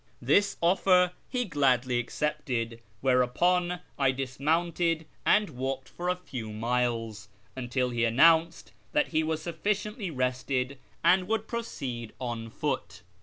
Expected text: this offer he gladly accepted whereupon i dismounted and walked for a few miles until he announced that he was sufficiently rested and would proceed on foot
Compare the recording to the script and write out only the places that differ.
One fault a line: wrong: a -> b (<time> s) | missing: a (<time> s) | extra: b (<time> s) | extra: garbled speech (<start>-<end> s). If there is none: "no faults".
no faults